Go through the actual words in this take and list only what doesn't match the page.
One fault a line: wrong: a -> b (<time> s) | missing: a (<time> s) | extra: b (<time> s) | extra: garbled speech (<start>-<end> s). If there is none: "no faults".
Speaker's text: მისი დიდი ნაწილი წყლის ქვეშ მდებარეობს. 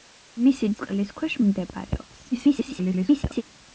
missing: დიდი ნაწილი (0.7 s)
extra: garbled speech (2.3-3.4 s)